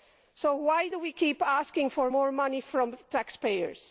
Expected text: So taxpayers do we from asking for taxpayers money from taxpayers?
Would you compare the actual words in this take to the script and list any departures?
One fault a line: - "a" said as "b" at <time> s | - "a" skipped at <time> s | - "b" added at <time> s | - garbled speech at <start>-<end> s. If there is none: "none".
- "taxpayers" said as "why" at 0.6 s
- "from" said as "keep" at 1.1 s
- "taxpayers" said as "more" at 2.1 s